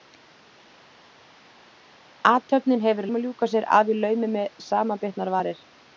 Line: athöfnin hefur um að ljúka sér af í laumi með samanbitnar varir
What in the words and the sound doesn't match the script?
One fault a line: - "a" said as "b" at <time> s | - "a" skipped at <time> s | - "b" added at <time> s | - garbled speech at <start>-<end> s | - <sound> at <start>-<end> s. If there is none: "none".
none